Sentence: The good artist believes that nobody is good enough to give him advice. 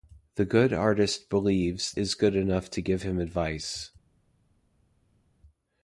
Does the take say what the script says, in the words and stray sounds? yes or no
no